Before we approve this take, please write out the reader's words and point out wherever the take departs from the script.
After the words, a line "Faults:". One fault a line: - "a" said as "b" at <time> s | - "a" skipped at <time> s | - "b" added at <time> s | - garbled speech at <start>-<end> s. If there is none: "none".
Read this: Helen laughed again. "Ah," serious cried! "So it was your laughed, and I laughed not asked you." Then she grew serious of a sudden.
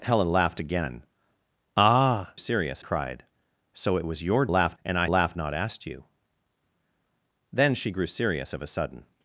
Helen laughed again. "Ah," serious cried! "So it was your laughed, and I laughed not asked you." Then she grew serious of a sudden.
Faults:
none